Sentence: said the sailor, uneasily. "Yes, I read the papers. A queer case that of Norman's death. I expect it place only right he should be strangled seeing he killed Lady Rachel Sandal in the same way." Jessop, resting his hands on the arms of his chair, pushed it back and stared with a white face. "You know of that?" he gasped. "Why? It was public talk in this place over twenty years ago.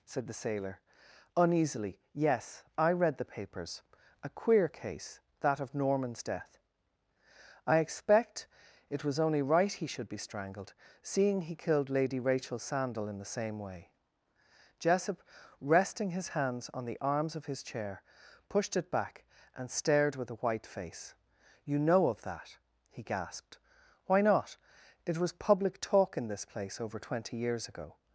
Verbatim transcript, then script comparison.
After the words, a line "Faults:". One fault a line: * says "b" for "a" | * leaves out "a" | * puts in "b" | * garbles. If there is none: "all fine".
said the sailor, uneasily. "Yes, I read the papers. A queer case that of Norman's death. I expect it was only right he should be strangled seeing he killed Lady Rachel Sandal in the same way." Jessop, resting his hands on the arms of his chair, pushed it back and stared with a white face. "You know of that?" he gasped. "Why not? It was public talk in this place over twenty years ago.
Faults:
* says "was" for "place"
* puts in "not"